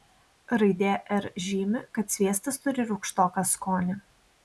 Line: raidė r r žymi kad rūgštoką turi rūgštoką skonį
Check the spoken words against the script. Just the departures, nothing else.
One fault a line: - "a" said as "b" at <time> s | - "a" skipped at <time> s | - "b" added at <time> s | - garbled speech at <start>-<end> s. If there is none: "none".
- "r" skipped at 1.3 s
- "rūgštoką" said as "sviestas" at 2.2 s